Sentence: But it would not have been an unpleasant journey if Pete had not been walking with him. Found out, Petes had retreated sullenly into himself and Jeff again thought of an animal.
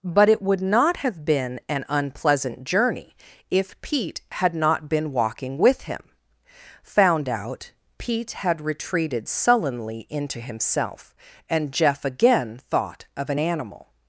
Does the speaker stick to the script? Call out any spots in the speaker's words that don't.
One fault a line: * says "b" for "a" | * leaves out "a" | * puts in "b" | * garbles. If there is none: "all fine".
* says "Pete" for "Petes"